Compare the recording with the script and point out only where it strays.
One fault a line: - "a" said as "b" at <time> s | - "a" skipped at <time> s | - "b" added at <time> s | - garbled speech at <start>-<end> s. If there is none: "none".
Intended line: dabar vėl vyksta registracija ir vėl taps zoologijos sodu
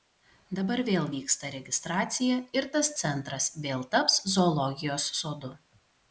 - "tas centras" added at 2.8 s